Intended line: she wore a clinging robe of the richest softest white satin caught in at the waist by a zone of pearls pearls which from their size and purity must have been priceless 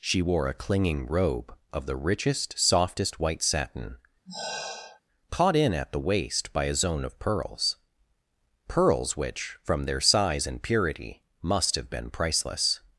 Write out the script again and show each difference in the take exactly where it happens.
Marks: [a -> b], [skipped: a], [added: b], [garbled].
she wore a clinging robe of the richest softest white satin caught in at the waist by a zone of pearls pearls which from their size and purity must have been priceless